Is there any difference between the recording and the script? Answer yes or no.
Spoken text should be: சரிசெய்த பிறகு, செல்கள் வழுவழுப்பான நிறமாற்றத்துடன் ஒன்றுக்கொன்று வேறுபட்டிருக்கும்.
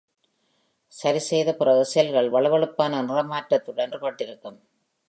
yes